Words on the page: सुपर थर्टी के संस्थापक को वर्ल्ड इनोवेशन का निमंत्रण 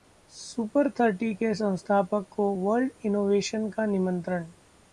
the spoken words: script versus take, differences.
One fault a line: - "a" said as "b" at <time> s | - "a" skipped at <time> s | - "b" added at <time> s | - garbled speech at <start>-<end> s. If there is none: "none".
none